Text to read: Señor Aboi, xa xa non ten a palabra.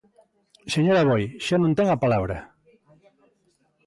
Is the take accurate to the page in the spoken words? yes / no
no